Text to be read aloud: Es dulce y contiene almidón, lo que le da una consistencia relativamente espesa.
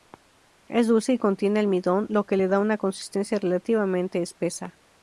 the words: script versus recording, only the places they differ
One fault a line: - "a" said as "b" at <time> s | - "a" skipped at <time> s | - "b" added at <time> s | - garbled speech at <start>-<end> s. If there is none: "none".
none